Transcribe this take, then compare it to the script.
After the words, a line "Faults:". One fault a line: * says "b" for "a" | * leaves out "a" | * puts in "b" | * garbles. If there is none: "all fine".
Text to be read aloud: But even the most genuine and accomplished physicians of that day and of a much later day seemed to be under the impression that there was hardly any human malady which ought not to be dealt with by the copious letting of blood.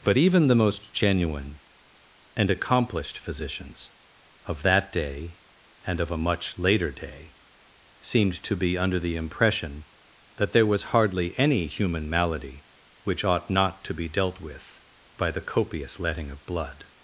But even the most genuine and accomplished physicians of that day and of a much later day seemed to be under the impression that there was hardly any human malady which ought not to be dealt with by the copious letting of blood.
Faults:
all fine